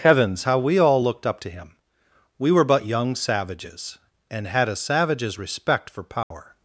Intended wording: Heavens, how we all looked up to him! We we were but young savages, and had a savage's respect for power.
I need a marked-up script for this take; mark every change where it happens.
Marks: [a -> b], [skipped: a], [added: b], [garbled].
Heavens, how we all looked up to him! We [skipped: we] were but young savages, and had a savage's respect for power.